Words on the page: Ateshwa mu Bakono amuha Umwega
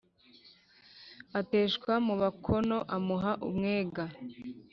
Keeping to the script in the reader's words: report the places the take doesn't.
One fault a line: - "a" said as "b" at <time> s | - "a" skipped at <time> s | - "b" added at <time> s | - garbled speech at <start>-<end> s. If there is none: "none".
none